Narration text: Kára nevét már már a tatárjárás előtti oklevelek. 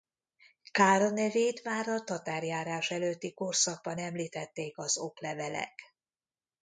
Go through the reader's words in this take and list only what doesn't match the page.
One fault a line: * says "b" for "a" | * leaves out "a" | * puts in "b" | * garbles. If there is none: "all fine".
* leaves out "már"
* puts in "korszakban említették az"